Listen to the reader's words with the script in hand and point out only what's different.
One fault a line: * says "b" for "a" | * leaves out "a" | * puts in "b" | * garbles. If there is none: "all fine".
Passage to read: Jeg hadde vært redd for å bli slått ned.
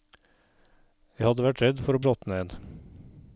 * leaves out "bli"